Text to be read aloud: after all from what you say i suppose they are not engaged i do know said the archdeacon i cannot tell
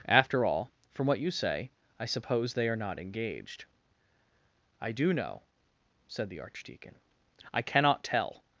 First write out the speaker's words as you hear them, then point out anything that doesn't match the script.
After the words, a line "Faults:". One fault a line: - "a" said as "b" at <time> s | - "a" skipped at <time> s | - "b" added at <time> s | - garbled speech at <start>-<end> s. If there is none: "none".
after all from what you say i suppose they are not engaged i do know said the archdeacon i cannot tell
Faults:
none